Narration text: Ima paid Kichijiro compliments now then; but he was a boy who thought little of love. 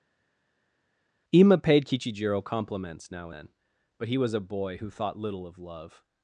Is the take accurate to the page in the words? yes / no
yes